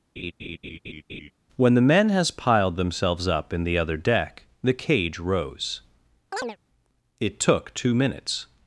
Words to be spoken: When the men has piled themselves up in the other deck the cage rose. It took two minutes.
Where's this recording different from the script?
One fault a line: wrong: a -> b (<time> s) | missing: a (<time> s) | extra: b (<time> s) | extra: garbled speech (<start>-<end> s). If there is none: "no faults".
no faults